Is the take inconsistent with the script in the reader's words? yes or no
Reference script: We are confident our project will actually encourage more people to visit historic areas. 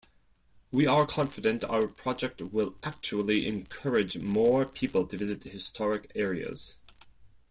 no